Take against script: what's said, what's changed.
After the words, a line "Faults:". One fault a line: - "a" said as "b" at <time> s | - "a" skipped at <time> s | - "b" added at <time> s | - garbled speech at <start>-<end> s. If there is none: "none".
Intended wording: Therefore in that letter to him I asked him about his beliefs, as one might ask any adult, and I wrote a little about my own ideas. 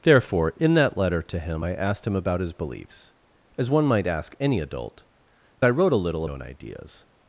Therefore in that letter to him I asked him about his beliefs, as one might ask any adult, I wrote a little own ideas.
Faults:
- "and" skipped at 5.0 s
- "about my" skipped at 6.2 s